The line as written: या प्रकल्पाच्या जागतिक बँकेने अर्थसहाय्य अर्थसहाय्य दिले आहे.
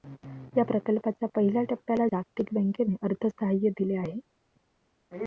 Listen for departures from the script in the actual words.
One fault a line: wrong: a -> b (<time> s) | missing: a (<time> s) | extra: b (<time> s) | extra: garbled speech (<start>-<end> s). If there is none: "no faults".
extra: पहिल्या टप्प्याला (1.3 s)
missing: अर्थसहाय्य (3.7 s)